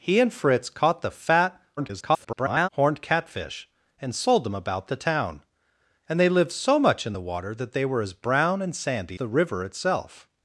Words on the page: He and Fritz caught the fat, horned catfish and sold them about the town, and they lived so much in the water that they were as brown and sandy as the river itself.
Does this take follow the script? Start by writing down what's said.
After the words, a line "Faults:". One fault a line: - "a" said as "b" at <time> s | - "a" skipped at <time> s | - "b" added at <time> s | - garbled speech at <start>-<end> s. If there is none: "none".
He and Fritz caught the fat, [garbled] horned catfish and sold them about the town, and they lived so much in the water that they were as brown and sandy the river itself.
Faults:
- garbled speech at 1.8-2.7 s
- "as" skipped at 9.2 s